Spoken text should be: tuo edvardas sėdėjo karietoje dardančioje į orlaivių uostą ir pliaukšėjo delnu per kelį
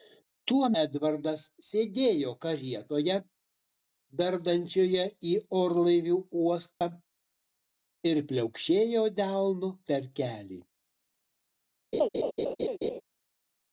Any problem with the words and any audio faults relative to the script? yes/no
yes